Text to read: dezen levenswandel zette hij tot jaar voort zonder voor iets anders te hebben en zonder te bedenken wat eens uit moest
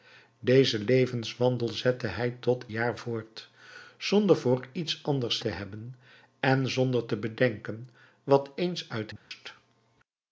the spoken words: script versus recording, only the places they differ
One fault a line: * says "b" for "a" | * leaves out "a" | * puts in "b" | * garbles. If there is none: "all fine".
all fine